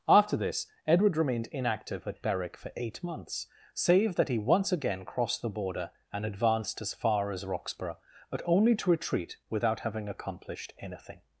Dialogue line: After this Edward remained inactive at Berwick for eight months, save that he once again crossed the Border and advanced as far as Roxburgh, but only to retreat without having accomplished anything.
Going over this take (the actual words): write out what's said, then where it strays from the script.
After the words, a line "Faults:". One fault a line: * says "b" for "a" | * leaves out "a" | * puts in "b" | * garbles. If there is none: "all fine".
After this Edward remained inactive at Berwick for eight months, save that he once again crossed the Border and advanced as far as Roxburgh, but only to retreat without having accomplished anything.
Faults:
all fine